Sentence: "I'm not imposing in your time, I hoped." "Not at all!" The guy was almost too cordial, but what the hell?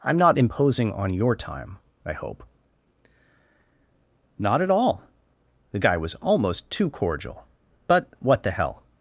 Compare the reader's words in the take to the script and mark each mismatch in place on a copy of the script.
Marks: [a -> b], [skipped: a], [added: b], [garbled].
"I'm not imposing [in -> on] your time, I [hoped." -> hope] "Not at all!" The guy was almost too cordial, but what the hell?